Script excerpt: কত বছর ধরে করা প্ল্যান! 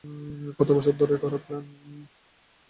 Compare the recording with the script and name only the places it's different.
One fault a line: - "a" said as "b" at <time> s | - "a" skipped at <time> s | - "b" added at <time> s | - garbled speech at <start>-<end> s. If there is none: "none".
none